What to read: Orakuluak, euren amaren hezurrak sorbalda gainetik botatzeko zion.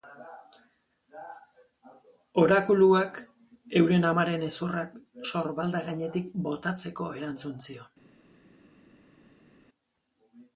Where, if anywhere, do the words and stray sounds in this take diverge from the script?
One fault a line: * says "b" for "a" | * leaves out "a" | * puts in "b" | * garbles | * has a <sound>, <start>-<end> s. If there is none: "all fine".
* puts in "erantzun"